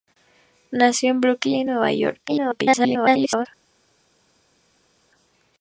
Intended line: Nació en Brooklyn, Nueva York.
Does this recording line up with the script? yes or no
no